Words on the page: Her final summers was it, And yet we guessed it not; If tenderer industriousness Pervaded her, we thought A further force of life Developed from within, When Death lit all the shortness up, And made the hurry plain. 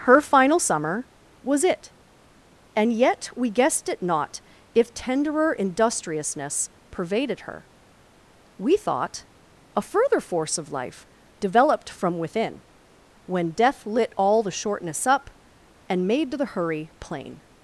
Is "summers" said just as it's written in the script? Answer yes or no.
no